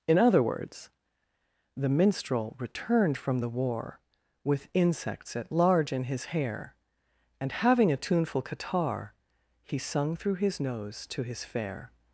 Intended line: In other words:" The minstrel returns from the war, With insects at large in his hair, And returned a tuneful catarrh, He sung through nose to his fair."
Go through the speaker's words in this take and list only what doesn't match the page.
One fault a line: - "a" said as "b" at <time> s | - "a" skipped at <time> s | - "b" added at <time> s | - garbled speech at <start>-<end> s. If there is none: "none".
- "returns" said as "returned" at 2.6 s
- "returned" said as "having" at 7.5 s
- "his" added at 10.4 s